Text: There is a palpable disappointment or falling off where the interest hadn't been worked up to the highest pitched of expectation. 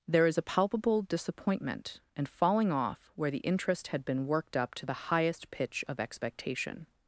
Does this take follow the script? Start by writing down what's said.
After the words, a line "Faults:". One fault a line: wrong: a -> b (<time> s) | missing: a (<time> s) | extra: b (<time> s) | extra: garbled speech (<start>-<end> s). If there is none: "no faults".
There is a palpable disappointment and falling off where the interest had been worked up to the highest pitch of expectation.
Faults:
wrong: or -> and (2.2 s)
wrong: hadn't -> had (3.9 s)
wrong: pitched -> pitch (5.5 s)